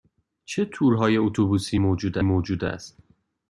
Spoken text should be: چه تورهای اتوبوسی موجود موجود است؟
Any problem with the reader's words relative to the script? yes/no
no